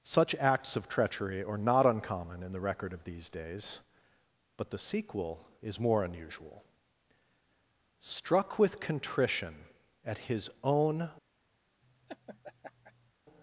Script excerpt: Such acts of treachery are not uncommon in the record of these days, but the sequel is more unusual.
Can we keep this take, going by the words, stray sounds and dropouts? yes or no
no